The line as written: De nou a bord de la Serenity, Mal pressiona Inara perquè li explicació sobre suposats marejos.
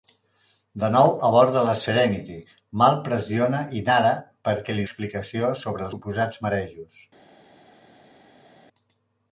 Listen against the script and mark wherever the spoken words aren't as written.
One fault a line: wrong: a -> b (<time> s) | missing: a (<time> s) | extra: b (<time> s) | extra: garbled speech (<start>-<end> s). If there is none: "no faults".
no faults